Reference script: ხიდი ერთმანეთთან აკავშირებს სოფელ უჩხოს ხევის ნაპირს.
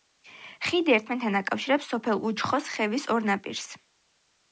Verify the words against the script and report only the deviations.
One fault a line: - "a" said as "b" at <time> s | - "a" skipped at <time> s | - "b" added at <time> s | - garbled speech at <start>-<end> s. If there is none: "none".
- "ორ" added at 3.2 s